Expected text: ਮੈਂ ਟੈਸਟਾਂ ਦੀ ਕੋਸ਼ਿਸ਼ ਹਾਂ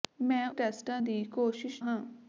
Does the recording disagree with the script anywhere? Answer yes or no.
no